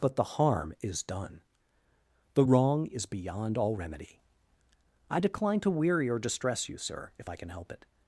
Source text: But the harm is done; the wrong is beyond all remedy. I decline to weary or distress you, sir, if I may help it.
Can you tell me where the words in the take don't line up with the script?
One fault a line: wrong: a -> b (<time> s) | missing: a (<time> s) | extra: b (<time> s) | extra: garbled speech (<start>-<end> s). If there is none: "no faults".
wrong: may -> can (7.4 s)